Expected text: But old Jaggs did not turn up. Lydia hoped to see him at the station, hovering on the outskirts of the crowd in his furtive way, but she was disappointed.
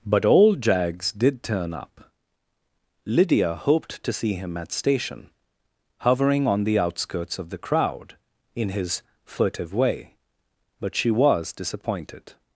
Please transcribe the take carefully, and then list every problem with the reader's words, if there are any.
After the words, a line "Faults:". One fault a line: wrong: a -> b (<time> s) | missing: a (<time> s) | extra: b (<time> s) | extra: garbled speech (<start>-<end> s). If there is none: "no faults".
But old Jaggs did turn up. Lydia hoped to see him at station, hovering on the outskirts of the crowd in his furtive way, but she was disappointed.
Faults:
missing: not (1.4 s)
missing: the (4.7 s)